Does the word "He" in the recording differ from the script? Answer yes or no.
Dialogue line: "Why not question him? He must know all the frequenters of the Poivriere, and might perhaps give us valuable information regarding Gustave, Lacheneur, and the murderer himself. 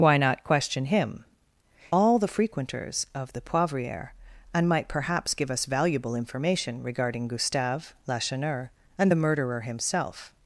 yes